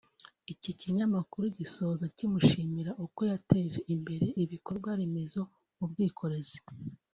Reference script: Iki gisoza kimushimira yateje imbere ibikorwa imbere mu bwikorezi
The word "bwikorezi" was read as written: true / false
true